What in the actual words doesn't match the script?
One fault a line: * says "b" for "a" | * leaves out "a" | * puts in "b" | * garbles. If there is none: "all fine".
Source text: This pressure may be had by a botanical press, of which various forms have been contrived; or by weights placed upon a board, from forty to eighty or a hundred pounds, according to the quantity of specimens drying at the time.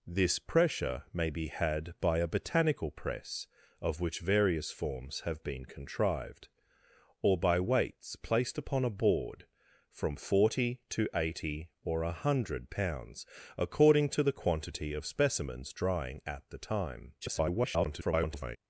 * garbles